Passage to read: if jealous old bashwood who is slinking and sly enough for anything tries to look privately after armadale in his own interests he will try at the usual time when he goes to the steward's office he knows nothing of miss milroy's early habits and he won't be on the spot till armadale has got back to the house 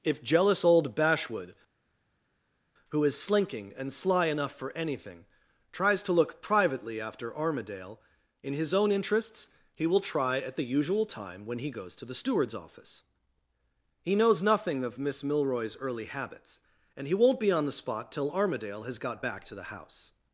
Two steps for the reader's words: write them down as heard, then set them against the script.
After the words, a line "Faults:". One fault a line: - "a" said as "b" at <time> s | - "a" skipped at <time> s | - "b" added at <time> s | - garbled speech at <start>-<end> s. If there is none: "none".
if jealous old bashwood who is slinking and sly enough for anything tries to look privately after armadale in his own interests he will try at the usual time when he goes to the steward's office he knows nothing of miss milroy's early habits and he won't be on the spot till armadale has got back to the house
Faults:
none